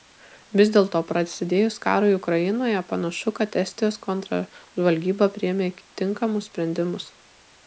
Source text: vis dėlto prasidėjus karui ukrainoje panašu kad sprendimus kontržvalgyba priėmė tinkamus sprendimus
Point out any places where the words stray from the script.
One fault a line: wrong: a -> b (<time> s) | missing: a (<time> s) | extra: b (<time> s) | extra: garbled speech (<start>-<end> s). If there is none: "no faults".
wrong: sprendimus -> estijos (3.6 s)